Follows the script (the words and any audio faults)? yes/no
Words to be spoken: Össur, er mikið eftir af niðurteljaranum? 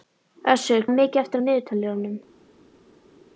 yes